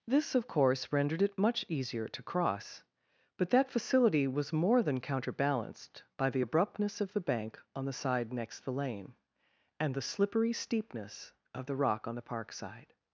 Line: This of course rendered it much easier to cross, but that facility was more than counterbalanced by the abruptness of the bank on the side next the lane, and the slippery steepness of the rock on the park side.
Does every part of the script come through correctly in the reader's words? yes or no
yes